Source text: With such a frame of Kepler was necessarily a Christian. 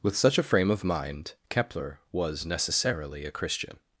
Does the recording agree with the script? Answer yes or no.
no